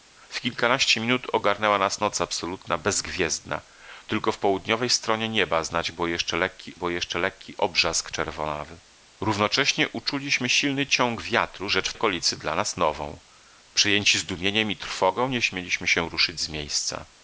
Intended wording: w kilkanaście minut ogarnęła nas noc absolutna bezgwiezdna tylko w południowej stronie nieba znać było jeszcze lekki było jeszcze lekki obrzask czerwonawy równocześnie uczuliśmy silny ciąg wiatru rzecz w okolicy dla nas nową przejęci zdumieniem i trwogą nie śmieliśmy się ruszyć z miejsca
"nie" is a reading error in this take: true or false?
false